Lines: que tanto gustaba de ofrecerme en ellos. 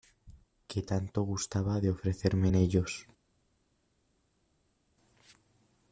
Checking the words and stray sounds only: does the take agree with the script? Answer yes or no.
yes